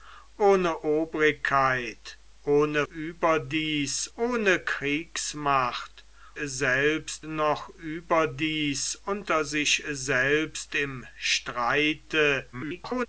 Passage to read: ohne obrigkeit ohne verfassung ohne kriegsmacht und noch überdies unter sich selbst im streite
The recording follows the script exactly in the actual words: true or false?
false